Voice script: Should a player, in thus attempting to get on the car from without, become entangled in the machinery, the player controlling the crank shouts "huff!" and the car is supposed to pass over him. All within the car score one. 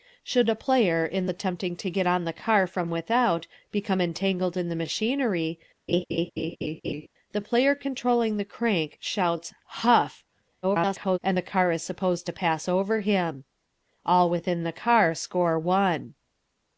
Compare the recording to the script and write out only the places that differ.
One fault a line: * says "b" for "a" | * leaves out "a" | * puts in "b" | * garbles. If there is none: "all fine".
* leaves out "thus"
* garbles